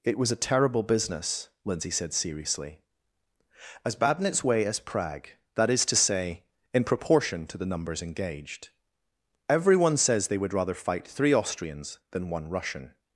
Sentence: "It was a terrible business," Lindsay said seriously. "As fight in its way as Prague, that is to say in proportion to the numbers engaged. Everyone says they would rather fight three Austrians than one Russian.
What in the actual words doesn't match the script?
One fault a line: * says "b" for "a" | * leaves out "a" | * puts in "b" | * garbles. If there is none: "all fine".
* says "bad" for "fight"